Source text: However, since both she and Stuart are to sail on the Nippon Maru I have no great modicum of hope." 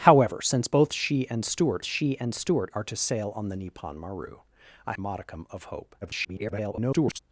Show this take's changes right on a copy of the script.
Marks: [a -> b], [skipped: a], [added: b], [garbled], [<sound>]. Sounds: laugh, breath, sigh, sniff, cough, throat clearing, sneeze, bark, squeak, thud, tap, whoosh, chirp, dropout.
However, since both she and Stuart [added: she and Stuart] are to sail on the Nippon Maru I [skipped: have no great] modicum of hope." [garbled]